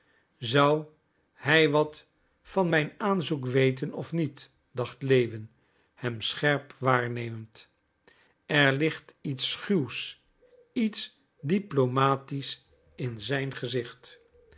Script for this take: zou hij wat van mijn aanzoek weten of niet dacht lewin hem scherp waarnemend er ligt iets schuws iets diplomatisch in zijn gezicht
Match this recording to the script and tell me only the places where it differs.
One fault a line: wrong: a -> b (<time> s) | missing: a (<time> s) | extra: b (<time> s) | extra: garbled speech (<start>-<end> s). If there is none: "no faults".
no faults